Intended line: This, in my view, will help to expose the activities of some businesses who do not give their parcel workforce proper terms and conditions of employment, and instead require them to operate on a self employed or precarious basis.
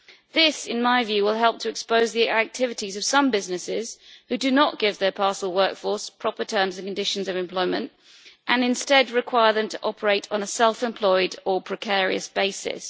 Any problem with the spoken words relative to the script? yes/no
no